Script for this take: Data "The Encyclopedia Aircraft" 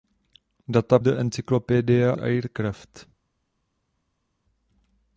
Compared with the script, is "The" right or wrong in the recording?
right